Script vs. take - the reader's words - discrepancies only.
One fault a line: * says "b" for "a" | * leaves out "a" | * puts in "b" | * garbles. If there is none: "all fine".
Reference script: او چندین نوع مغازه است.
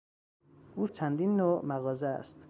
all fine